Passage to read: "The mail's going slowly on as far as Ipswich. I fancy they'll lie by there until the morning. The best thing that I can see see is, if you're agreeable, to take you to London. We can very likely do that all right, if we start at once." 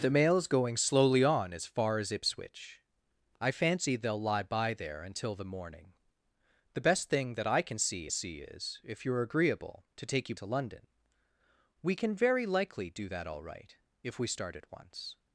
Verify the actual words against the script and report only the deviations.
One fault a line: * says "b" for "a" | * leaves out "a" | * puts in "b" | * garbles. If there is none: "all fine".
all fine